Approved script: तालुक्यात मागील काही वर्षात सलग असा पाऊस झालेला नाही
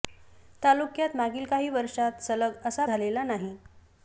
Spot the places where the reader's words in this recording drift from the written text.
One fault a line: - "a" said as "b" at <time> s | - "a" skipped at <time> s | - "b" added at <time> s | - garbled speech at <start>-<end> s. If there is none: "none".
- "पाऊस" skipped at 2.9 s